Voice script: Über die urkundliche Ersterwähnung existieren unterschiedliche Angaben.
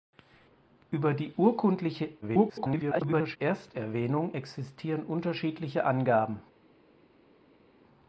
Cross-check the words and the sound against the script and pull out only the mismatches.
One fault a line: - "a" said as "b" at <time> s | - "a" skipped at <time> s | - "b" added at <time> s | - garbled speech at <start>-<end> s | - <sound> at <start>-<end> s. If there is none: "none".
- garbled speech at 2.2-3.4 s